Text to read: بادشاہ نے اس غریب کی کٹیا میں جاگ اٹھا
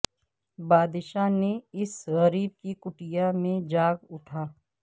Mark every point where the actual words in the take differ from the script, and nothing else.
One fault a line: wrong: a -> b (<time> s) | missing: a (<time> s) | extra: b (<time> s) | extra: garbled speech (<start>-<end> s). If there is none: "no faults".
no faults